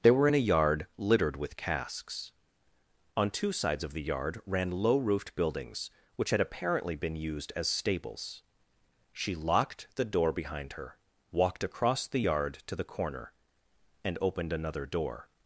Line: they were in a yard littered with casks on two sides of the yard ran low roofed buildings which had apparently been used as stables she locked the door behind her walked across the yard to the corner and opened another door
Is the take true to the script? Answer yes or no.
yes